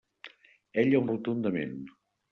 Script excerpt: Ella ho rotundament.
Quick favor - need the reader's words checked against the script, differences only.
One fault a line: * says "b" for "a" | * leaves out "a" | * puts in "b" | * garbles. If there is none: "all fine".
all fine